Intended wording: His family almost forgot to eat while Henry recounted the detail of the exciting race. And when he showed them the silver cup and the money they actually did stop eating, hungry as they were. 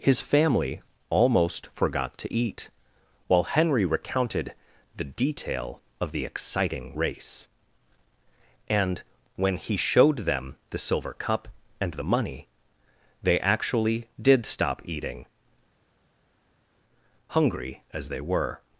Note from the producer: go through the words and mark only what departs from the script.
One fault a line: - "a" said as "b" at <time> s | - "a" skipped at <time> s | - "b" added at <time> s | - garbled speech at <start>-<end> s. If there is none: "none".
none